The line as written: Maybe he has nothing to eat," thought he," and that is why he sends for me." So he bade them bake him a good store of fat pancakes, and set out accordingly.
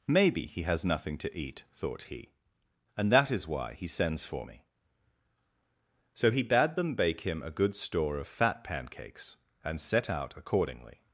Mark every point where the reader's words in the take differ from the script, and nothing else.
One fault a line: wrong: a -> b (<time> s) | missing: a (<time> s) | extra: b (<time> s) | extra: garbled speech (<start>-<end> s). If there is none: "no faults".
no faults